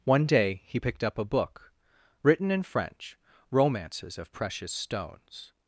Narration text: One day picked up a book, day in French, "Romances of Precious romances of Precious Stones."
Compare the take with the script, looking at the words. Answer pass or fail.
fail